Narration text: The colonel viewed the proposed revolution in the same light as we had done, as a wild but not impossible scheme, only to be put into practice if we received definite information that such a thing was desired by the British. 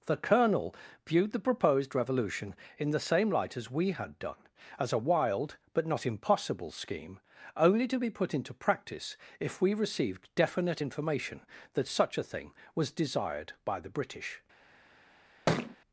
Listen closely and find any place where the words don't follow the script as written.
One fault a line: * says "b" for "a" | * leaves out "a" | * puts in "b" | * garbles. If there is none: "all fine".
all fine